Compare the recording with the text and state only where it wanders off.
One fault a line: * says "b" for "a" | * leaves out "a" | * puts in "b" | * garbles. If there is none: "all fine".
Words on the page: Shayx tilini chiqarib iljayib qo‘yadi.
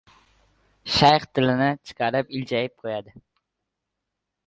all fine